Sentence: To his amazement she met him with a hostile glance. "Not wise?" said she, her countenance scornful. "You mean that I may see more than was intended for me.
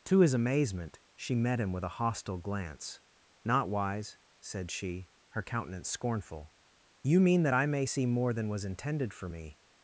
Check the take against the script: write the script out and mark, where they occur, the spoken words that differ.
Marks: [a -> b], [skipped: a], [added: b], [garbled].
To his amazement she met him with a hostile glance. "Not wise?" said she, her countenance scornful. "You mean that I may see more than was intended for me.